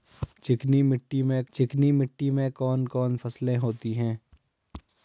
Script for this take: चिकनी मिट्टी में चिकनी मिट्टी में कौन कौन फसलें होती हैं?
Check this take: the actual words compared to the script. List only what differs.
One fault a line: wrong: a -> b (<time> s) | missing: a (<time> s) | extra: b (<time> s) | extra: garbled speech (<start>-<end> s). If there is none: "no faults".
no faults